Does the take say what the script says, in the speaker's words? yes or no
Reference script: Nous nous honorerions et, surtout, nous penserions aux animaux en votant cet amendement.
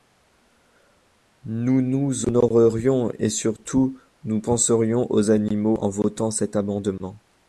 yes